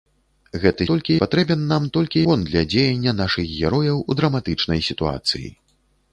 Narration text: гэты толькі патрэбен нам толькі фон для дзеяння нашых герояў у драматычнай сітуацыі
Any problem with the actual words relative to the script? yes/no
no